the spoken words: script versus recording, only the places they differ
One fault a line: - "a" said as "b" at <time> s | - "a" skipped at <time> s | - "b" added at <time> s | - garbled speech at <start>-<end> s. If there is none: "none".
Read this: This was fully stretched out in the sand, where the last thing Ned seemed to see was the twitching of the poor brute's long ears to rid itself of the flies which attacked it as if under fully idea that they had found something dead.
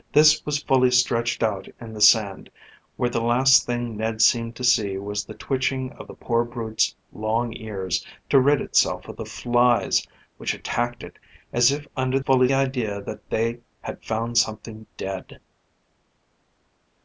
none